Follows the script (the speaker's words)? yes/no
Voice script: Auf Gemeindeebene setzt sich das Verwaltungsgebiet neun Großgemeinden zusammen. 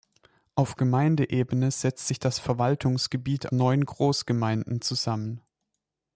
yes